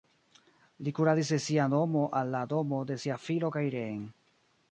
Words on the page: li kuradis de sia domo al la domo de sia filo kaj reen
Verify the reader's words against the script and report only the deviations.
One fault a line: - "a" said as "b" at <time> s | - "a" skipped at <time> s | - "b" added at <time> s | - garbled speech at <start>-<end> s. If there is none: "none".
none